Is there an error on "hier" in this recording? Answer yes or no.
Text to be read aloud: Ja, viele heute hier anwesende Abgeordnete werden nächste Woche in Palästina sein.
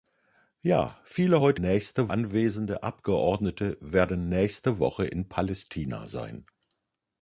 yes